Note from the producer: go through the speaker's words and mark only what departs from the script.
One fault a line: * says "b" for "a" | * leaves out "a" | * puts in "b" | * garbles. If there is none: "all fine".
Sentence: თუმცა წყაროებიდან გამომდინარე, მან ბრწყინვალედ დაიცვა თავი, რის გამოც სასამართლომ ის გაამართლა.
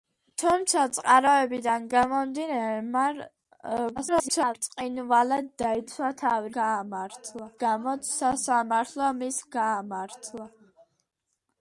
* garbles
* says "გაამართლა" for "რის"